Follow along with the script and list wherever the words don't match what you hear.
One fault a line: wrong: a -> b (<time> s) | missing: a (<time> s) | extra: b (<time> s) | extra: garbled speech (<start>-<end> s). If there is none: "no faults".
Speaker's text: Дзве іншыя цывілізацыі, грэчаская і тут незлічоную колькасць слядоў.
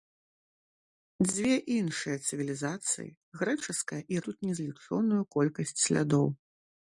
no faults